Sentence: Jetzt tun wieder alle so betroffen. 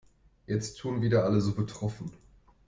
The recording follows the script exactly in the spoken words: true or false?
true